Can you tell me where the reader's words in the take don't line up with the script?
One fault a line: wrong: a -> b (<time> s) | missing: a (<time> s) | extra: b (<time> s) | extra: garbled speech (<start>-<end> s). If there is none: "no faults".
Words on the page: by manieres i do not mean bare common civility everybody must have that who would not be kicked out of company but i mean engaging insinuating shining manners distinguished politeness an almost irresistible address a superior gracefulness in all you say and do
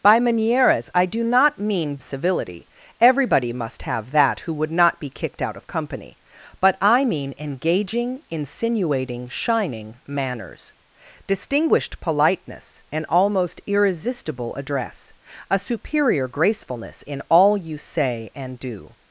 missing: bare common (2.0 s)